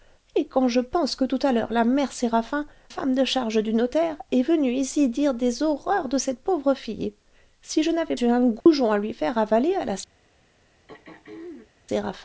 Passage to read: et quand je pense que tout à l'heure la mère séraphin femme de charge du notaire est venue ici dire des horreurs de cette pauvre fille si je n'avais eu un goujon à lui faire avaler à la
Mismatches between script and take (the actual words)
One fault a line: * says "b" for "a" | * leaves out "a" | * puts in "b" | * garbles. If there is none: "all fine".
all fine